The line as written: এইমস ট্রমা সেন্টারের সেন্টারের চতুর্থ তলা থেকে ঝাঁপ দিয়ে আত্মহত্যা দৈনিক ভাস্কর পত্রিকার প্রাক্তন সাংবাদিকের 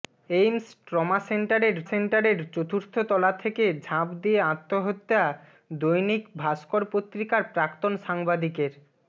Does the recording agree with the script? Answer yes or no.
yes